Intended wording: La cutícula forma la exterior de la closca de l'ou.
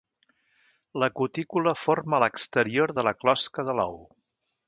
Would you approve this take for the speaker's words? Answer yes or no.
yes